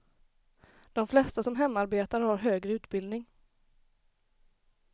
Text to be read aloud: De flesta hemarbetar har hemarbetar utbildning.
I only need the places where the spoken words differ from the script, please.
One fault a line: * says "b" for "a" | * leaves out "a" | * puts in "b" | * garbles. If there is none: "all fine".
* puts in "som"
* says "högre" for "hemarbetar"